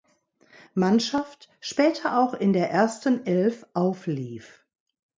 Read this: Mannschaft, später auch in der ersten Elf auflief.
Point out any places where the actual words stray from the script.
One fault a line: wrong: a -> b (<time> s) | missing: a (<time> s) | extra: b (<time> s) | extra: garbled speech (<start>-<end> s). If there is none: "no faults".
no faults